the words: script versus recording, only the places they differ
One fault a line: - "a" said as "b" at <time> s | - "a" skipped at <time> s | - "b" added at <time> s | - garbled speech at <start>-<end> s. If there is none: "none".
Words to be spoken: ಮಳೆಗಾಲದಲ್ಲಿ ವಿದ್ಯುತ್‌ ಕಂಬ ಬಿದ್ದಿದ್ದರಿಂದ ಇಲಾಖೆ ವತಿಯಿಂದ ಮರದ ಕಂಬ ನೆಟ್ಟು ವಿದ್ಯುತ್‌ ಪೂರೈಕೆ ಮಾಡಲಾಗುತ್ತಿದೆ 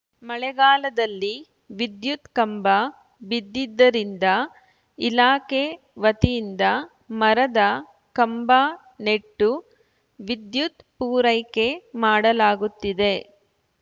none